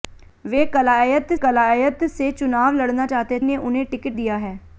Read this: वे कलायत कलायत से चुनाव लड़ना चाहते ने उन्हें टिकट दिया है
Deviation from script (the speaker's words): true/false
false